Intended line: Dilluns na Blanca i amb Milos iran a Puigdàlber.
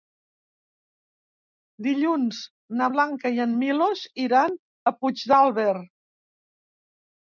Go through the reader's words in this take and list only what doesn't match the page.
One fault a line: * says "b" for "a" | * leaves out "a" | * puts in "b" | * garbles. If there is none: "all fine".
* says "en" for "amb"